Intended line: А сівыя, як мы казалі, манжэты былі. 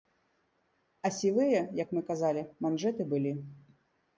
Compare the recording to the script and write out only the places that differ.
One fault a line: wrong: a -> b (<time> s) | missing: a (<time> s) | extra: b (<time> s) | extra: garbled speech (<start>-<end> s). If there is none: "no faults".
no faults